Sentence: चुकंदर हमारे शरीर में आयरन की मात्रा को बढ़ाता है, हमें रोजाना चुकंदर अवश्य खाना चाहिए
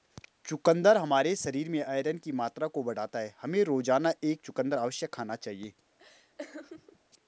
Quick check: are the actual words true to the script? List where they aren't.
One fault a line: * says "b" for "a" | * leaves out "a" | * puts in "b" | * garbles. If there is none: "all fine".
* puts in "एक"